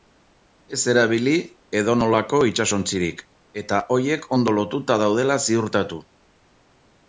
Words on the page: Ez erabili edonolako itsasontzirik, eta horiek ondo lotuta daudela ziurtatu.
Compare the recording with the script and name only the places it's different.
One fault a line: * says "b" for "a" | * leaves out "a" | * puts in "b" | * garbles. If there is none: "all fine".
all fine